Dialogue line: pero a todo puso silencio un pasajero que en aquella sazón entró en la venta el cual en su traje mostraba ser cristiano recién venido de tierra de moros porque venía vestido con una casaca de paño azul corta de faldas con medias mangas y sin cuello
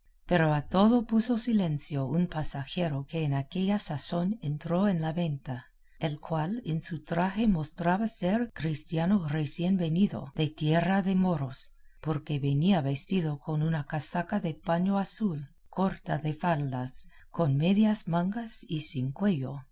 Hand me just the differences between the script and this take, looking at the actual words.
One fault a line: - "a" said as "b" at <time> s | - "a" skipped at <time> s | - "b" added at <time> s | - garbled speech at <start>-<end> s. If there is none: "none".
none